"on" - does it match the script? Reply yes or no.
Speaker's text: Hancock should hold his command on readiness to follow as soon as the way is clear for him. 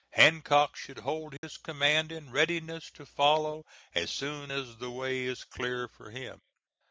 no